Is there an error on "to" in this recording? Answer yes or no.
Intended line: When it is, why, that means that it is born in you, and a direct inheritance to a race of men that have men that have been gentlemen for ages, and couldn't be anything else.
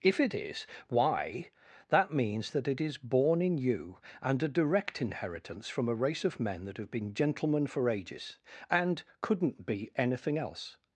yes